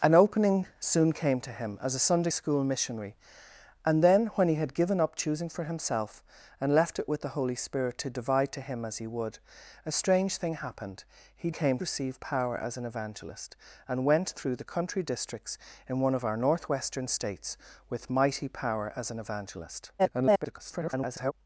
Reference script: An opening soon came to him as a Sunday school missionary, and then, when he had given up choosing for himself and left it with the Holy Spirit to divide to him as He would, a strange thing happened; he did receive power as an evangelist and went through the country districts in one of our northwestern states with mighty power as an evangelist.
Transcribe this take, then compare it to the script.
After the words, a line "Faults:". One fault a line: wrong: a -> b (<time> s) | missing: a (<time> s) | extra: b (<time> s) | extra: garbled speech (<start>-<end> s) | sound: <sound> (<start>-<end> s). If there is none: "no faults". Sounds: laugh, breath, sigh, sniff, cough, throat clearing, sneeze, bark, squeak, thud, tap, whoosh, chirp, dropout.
An opening soon came to him as a Sunday school missionary, and then, when he had given up choosing for himself and left it with the Holy Spirit to divide to him as He would, a strange thing happened; he came receive power as an evangelist and went through the country districts in one of our northwestern states with mighty power as an evangelist. [garbled]
Faults:
wrong: did -> came (11.5 s)
extra: garbled speech (20.0-21.3 s)